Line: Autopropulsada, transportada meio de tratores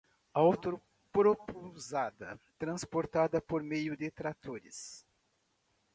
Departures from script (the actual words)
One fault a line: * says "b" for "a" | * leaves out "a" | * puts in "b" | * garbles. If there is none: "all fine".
* puts in "por"